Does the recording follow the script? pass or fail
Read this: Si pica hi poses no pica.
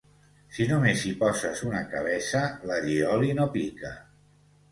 fail